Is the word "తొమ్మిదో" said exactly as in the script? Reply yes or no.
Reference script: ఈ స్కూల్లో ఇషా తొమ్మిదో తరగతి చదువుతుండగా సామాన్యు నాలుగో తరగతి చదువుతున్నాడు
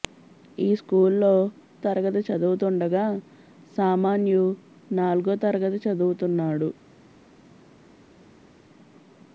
no